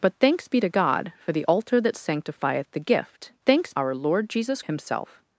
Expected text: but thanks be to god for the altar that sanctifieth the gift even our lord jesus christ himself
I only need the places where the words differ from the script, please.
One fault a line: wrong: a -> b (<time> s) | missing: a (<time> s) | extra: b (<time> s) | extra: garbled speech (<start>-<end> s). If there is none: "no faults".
wrong: even -> thanks (3.4 s)
missing: christ (4.6 s)